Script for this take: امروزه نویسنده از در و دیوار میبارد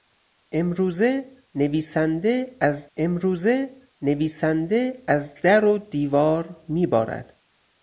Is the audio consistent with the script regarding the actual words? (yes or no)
no